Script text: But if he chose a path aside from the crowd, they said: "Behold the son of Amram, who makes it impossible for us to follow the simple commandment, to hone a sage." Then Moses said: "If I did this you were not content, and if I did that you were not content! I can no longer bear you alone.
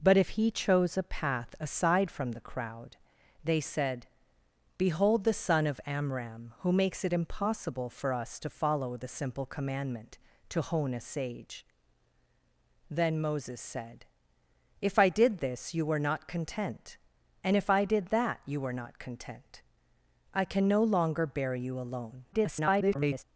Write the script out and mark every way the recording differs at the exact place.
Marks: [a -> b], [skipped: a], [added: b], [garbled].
But if he chose a path aside from the crowd, they said: "Behold the son of Amram, who makes it impossible for us to follow the simple commandment, to hone a sage." Then Moses said: "If I did this you were not content, and if I did that you were not content! I can no longer bear you alone. [garbled]